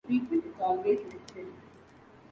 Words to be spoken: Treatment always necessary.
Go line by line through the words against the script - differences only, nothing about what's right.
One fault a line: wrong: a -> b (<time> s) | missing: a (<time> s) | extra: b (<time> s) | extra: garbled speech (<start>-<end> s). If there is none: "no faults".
extra: is (0.4 s)